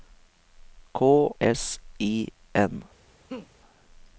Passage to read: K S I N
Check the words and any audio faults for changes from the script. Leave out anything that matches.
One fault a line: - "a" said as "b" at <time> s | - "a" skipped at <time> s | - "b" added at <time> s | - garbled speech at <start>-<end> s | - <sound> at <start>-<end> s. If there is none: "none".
- laugh at 3.3-3.5 s